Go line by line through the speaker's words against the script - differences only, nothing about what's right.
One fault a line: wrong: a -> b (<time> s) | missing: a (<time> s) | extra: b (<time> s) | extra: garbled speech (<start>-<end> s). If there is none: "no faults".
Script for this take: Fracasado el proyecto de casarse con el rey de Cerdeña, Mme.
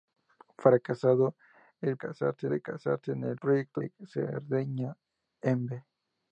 wrong: proyecto -> casarse (2.0 s)
wrong: rey -> proyecto (3.4 s)